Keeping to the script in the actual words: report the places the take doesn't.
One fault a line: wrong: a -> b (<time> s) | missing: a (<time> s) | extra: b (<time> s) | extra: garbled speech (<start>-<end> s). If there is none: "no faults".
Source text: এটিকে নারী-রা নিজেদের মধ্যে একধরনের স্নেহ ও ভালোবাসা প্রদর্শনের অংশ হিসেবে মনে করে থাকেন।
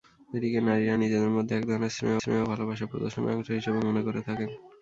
extra: স্নেহ (2.2 s)